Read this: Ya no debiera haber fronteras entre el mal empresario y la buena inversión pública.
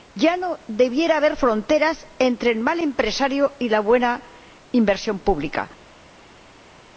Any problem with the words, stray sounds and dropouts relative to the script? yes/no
no